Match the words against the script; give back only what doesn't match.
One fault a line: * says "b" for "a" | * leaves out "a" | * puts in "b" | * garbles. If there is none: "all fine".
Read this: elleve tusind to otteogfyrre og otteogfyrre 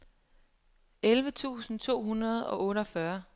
* says "hundrede" for "otteogfyrre"